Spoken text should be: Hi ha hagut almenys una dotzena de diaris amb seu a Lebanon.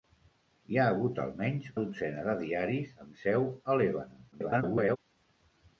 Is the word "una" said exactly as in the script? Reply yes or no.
no